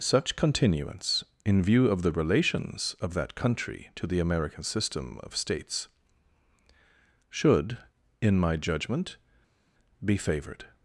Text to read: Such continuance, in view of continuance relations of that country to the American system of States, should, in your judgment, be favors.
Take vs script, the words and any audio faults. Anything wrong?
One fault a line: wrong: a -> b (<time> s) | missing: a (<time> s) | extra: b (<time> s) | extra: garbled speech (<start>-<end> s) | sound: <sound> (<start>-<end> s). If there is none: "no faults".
wrong: continuance -> the (2.0 s)
wrong: your -> my (8.4 s)
wrong: favors -> favored (10.1 s)